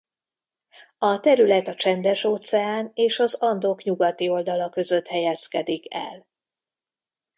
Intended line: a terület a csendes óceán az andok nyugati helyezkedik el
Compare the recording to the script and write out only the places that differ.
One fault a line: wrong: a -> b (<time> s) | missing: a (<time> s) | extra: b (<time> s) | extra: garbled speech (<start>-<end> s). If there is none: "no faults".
extra: és (2.9 s)
extra: oldala között (4.3 s)